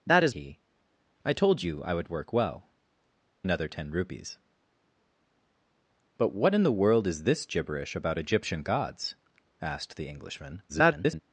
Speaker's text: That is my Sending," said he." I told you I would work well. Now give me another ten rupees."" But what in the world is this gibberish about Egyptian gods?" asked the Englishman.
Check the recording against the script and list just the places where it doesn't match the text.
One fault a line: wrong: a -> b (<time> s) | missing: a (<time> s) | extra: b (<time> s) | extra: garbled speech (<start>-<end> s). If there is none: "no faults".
missing: my Sending said (0.3 s)
missing: Now give me (2.7 s)
extra: garbled speech (10.7-11.2 s)